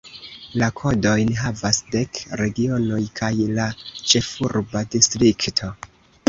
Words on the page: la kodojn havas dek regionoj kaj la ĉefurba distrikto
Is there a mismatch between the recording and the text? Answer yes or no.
no